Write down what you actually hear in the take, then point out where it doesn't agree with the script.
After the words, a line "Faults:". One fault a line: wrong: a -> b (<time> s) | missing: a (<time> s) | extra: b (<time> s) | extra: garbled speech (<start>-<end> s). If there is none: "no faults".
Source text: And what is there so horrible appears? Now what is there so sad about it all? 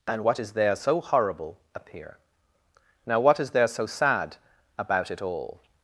And what is there so horrible appear? Now what is there so sad about it all?
Faults:
wrong: appears -> appear (1.7 s)